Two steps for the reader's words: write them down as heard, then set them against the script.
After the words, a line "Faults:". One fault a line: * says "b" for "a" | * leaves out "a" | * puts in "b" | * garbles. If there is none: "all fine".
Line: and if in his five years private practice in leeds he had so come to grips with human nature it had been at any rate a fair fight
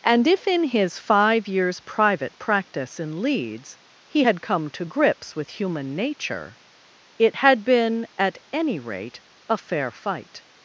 and if in his five years private practice in leeds he had come to grips with human nature it had been at any rate a fair fight
Faults:
* leaves out "so"